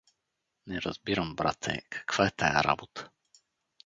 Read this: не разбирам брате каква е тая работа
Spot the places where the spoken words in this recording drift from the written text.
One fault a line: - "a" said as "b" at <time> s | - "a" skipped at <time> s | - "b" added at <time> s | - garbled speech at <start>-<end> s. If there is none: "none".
none